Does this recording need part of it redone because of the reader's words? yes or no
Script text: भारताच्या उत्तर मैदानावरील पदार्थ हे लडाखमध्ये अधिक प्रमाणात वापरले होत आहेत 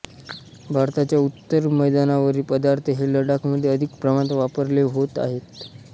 no